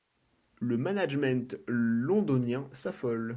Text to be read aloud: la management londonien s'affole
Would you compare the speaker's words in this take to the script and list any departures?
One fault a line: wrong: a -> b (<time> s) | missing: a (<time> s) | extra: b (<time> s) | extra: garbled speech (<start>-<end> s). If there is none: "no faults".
wrong: la -> le (0.6 s)